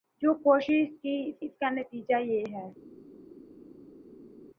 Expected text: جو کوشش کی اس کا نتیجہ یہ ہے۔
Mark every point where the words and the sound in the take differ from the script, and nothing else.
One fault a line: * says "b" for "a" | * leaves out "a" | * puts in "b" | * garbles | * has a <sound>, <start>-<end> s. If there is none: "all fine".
* puts in "اس"